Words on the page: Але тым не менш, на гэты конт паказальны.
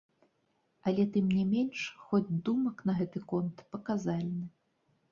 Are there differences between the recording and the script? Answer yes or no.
yes